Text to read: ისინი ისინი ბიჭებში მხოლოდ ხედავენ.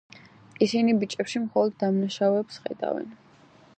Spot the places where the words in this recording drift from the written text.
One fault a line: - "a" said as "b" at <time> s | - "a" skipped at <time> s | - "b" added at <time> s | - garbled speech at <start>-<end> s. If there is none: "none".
- "ისინი" skipped at 0.9 s
- "დამნაშავეებს" added at 1.8 s